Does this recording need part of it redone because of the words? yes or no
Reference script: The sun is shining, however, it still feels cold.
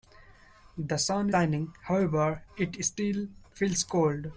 yes